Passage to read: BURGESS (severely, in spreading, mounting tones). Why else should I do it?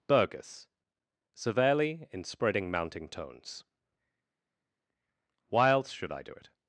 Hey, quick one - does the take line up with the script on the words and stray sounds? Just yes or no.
yes